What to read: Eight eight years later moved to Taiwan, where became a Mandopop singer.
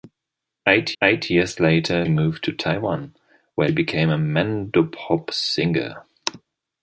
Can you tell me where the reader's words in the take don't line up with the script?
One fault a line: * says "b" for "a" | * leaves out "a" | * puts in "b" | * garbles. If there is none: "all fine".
all fine